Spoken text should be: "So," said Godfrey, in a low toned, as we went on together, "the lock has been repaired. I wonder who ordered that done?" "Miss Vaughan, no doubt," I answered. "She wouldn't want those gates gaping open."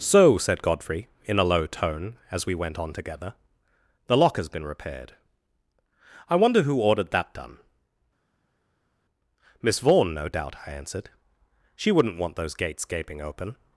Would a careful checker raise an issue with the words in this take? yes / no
yes